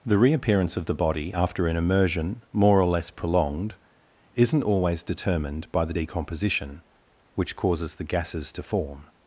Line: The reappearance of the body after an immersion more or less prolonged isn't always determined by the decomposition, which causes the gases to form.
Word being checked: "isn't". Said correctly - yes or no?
yes